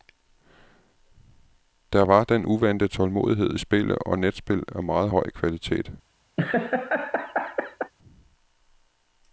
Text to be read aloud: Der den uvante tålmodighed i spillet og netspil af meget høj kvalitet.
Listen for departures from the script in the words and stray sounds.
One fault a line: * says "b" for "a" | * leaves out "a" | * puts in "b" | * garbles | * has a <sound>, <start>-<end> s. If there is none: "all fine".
* puts in "var"
* has a laugh, 6.4-7.9 s